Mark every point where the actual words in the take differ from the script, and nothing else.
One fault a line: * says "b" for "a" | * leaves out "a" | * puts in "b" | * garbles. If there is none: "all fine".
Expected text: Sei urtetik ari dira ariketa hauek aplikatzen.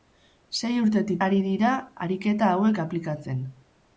all fine